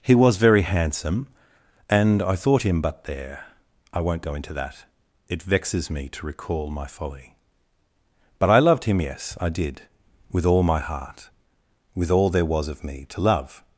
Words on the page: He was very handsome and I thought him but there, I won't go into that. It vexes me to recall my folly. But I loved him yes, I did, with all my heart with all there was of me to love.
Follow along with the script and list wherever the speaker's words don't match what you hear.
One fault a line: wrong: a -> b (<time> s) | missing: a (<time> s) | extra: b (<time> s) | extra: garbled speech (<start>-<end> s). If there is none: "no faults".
no faults